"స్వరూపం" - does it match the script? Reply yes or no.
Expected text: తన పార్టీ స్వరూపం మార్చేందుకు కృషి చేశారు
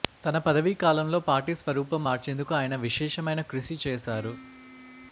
yes